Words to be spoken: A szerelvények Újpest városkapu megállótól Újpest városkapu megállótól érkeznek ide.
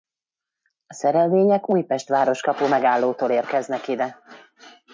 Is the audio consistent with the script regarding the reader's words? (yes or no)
no